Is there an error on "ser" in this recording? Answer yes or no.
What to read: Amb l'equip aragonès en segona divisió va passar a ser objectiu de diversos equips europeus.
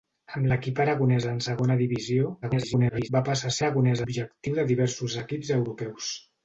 yes